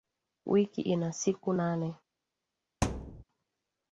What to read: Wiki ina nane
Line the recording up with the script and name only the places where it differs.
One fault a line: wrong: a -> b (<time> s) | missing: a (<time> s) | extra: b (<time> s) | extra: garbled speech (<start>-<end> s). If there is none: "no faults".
extra: siku (1.1 s)